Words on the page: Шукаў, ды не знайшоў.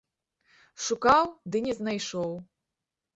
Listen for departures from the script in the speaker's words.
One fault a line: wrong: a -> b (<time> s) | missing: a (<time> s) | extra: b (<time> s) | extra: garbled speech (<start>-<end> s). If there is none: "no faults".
no faults